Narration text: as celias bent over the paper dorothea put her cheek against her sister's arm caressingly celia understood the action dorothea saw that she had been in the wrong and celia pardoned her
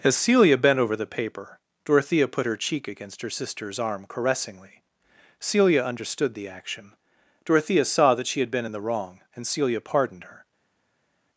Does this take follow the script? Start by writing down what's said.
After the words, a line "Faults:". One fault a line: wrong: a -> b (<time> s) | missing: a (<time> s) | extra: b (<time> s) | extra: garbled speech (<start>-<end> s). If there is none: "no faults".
as celia bent over the paper dorothea put her cheek against her sister's arm caressingly celia understood the action dorothea saw that she had been in the wrong and celia pardoned her
Faults:
wrong: celias -> celia (0.1 s)